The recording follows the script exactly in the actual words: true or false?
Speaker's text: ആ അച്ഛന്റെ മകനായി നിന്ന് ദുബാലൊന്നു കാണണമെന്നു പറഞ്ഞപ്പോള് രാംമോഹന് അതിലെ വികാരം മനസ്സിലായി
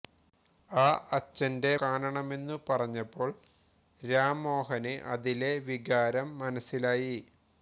false